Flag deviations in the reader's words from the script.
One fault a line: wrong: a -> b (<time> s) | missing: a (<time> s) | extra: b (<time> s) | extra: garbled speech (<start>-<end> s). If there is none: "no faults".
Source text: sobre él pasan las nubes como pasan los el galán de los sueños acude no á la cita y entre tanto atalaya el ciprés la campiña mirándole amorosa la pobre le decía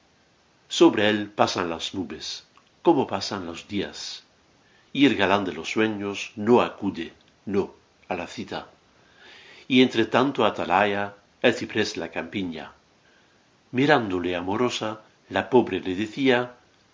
extra: días y (3.7 s)
extra: no (6.4 s)